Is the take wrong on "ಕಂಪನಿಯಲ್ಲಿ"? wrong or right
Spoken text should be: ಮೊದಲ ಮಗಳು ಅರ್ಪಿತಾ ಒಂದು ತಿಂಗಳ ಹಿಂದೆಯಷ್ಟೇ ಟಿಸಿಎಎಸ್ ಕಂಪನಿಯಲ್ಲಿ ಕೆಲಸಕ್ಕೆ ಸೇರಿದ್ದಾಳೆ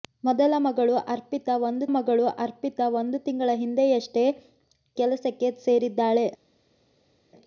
wrong